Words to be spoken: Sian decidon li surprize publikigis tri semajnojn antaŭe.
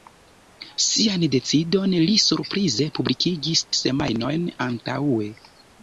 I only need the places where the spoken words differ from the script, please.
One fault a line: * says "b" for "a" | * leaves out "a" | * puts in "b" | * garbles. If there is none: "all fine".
* leaves out "tri"